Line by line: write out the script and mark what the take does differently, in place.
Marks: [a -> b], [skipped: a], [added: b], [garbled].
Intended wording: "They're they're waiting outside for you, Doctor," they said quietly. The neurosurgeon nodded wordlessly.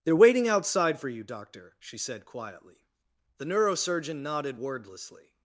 "They're [skipped: they're] waiting outside for you, Doctor," [they -> she] said quietly. The neurosurgeon nodded wordlessly.